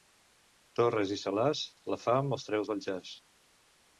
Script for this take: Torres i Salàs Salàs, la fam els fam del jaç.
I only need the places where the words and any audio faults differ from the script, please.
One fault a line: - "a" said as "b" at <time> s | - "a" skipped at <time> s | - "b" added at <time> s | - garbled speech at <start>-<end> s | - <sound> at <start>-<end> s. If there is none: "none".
- "Salàs" skipped at 1.6 s
- "fam" said as "treu" at 2.5 s